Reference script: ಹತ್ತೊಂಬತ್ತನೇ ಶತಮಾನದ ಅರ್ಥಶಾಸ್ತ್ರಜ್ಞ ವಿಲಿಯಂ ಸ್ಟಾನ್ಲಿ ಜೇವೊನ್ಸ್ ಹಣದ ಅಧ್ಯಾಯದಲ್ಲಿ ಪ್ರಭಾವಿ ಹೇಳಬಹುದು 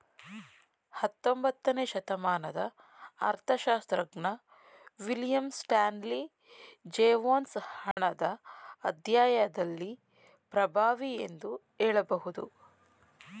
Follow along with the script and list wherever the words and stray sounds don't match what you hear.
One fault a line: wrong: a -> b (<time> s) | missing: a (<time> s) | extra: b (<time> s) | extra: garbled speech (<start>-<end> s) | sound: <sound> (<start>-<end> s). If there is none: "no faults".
sound: dropout (7.9-8.0 s)
extra: ಎಂದು (11.2 s)